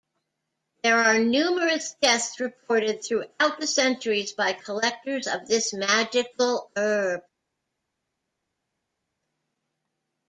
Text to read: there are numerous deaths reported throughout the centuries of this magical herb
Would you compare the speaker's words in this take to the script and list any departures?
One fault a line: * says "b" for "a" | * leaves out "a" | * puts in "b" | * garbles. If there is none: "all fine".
* puts in "by collectors"